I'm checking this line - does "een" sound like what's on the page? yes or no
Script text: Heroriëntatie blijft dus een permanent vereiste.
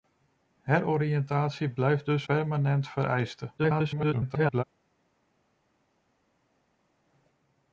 no